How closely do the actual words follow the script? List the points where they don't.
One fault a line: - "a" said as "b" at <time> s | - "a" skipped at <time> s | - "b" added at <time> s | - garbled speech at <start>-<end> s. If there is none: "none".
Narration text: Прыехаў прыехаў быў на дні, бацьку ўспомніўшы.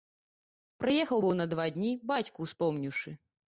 - "прыехаў" skipped at 1.2 s
- "два" added at 1.6 s